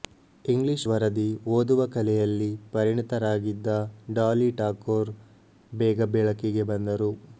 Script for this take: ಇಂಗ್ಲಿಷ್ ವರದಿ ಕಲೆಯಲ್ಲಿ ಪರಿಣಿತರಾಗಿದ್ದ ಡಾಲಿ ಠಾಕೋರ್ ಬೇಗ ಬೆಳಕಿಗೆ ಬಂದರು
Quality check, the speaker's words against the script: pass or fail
fail